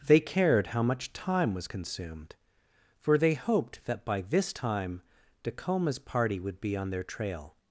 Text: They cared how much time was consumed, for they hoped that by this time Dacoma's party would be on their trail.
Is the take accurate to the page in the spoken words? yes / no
yes